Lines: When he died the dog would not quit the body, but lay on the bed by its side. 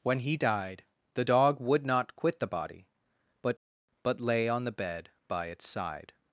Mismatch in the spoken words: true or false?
true